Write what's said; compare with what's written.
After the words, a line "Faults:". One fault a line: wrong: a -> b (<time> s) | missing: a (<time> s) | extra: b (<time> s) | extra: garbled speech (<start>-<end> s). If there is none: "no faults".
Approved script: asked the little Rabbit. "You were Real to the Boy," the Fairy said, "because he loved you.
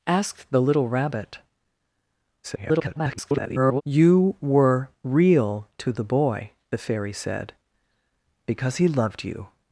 asked the little Rabbit. [garbled] "You were Real to the Boy," the Fairy said, "because he loved you.
Faults:
extra: garbled speech (2.4-3.8 s)